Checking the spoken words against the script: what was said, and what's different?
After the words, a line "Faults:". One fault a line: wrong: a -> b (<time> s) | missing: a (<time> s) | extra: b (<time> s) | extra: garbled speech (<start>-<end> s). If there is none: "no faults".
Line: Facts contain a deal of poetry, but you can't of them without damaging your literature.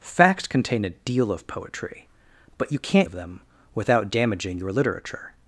Facts contain a deal of poetry, but you can't of them without damaging your literature.
Faults:
no faults